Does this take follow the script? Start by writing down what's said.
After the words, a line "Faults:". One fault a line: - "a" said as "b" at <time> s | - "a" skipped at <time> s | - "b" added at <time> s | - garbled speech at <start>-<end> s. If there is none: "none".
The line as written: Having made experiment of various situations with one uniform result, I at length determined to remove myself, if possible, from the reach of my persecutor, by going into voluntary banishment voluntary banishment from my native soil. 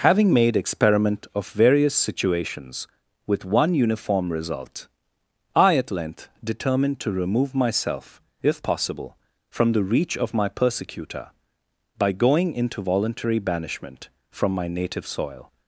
Having made experiment of various situations with one uniform result, I at length determined to remove myself, if possible, from the reach of my persecutor, by going into voluntary banishment from my native soil.
Faults:
- "voluntary banishment" skipped at 14.1 s